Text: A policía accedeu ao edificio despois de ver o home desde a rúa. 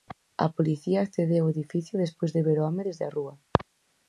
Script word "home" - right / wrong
right